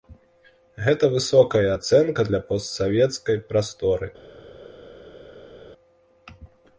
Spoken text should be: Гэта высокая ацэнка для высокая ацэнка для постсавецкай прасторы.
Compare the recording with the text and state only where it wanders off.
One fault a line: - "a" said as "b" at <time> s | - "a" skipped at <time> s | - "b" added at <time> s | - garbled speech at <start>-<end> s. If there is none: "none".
- "высокая ацэнка для" skipped at 2.4 s